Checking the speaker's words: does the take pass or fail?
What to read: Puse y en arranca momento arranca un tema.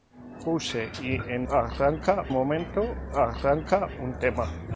pass